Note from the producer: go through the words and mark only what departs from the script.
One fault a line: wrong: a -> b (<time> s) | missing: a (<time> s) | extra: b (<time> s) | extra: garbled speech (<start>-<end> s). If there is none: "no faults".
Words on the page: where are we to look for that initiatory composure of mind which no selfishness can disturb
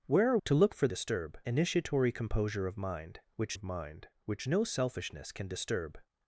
missing: we (0.4 s)
wrong: that -> disturb (0.9 s)
extra: of mind which (3.5 s)